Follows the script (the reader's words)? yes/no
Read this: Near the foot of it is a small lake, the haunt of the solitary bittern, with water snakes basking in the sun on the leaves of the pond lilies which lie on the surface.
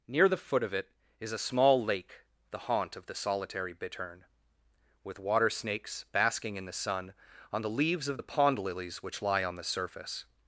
yes